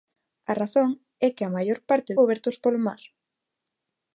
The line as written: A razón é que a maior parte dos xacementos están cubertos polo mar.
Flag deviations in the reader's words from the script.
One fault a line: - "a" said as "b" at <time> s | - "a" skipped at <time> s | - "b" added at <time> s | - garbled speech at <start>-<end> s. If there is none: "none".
- "dos xacementos están" skipped at 2.1 s